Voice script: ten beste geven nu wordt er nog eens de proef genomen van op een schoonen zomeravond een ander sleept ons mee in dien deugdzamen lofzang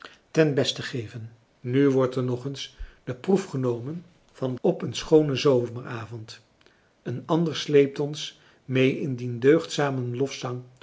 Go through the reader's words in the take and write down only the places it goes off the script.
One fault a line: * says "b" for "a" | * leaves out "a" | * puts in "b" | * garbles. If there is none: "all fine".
all fine